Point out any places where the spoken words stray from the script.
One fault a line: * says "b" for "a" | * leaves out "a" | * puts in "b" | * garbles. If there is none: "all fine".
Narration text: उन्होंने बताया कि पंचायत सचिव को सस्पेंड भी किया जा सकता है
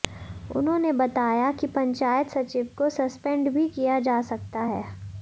all fine